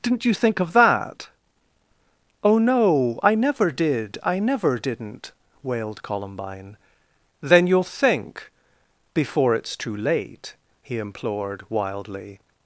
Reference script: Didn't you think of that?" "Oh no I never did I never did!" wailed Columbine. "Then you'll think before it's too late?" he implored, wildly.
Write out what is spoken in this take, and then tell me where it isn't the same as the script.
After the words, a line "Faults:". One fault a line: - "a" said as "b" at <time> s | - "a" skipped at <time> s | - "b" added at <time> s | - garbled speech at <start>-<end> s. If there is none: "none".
Didn't you think of that?" "Oh no I never did I never didn't!" wailed Columbine. "Then you'll think before it's too late?" he implored, wildly.
Faults:
- "did" said as "didn't" at 4.8 s